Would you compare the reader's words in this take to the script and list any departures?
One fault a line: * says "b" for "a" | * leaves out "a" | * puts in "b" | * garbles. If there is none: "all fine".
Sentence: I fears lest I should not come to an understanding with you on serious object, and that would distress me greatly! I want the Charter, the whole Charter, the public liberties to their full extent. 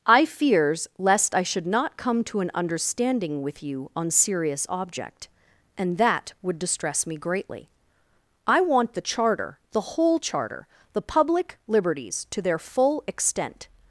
all fine